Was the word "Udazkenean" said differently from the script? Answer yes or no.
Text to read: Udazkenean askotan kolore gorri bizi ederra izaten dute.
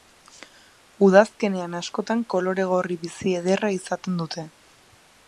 no